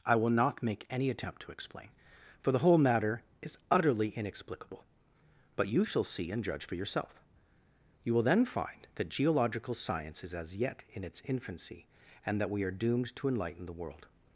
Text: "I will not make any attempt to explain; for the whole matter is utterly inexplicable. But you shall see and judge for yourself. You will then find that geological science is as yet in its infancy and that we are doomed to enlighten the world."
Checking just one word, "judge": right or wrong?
right